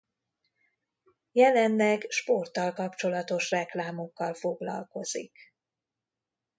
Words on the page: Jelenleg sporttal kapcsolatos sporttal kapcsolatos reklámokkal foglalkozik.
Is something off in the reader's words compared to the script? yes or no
yes